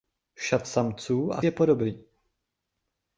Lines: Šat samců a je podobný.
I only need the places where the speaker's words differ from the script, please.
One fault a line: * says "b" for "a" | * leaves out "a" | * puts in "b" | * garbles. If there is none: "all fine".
all fine